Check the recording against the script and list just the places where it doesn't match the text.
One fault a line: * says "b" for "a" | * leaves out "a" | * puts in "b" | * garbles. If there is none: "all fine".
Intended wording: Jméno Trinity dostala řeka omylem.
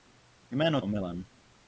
* leaves out "Trinity dostala řeka"